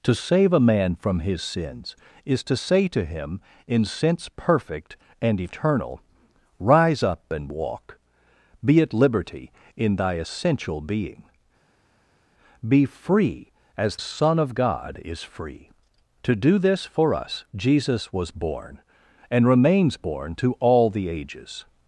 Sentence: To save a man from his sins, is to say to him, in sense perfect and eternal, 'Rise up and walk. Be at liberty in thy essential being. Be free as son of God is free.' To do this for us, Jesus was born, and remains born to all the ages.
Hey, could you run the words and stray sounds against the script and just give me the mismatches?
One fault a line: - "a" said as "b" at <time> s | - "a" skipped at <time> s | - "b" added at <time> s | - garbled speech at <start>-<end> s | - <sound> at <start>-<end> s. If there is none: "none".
none